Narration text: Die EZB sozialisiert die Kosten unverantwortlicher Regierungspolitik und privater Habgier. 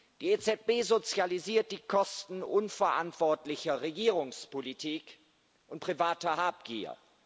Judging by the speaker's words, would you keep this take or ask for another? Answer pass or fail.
pass